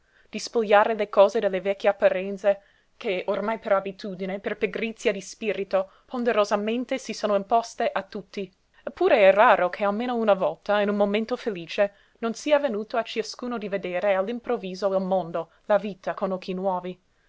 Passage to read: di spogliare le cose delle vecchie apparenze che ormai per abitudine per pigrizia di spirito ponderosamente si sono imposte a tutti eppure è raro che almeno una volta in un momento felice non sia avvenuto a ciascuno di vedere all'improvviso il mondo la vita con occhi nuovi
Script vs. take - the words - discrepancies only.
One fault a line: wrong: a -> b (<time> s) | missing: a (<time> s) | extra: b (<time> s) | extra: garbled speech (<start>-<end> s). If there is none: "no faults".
no faults